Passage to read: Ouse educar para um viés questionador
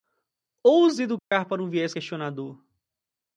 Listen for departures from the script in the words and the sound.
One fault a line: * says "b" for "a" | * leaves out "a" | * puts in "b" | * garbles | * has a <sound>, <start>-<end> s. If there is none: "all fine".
* has a dropout, 1.2-1.3 s